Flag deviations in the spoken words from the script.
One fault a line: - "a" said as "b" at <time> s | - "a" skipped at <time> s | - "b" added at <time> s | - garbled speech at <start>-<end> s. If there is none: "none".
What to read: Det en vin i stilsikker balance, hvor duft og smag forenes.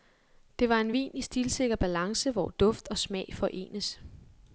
- "var" added at 0.7 s